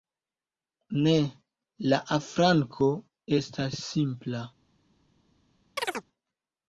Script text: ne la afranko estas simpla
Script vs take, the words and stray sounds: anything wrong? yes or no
yes